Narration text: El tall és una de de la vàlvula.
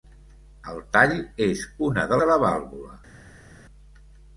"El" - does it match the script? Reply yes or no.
yes